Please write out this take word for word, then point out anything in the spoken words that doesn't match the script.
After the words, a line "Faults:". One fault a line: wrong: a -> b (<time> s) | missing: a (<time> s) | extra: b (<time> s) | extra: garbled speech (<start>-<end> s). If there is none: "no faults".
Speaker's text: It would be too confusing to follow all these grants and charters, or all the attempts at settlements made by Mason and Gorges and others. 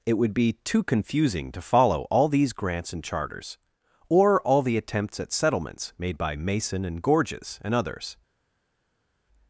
It would be too confusing to follow all these grants and charters, or all the attempts at settlements made by Mason and Gorges and others.
Faults:
no faults